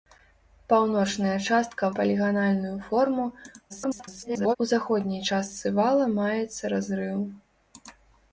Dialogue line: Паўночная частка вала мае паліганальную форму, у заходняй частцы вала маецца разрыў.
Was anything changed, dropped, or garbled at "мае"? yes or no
yes